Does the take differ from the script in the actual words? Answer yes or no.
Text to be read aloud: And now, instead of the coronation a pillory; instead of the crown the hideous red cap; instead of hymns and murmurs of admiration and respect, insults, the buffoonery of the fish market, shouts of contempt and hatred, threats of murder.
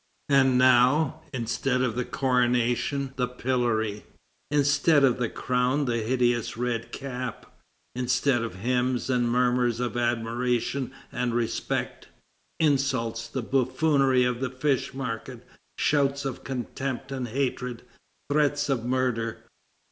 yes